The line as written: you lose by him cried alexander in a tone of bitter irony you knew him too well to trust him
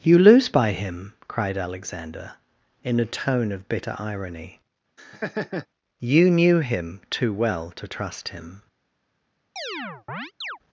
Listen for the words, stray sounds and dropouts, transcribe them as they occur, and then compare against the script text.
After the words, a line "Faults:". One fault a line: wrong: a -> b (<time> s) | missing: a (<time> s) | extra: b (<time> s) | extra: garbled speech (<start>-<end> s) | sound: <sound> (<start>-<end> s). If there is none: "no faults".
you lose by him cried alexander in a tone of bitter irony you knew him too well to trust him
Faults:
sound: laugh (5.0-5.7 s)
sound: chirp (9.6-10.6 s)